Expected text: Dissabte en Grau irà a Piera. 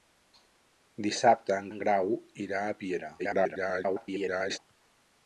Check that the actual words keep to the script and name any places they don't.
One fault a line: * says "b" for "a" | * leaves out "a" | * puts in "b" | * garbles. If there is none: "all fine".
* puts in "en"
* garbles